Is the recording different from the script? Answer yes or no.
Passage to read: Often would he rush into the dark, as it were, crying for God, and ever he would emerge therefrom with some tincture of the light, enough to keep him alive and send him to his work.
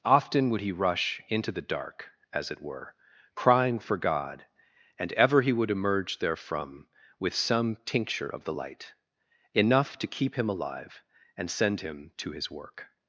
no